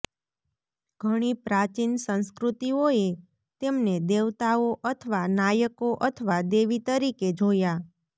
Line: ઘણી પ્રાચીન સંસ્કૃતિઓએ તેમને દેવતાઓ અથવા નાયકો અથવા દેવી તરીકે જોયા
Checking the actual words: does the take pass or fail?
pass